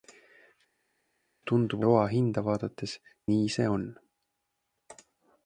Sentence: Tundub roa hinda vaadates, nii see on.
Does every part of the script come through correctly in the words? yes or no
yes